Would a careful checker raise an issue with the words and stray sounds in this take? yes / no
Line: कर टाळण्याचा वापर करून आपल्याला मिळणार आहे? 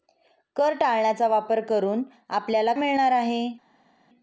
no